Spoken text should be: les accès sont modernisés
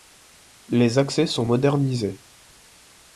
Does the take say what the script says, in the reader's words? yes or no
yes